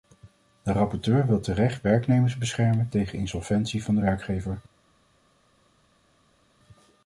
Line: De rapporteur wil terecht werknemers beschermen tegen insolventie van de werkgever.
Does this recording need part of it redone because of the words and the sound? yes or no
no